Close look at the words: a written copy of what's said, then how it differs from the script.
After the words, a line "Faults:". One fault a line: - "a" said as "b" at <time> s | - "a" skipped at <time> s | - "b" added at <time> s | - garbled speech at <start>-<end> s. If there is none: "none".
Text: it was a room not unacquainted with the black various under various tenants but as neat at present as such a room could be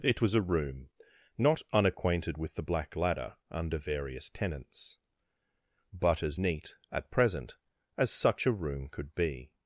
it was a room not unacquainted with the black ladder under various tenants but as neat at present as such a room could be
Faults:
- "various" said as "ladder" at 2.9 s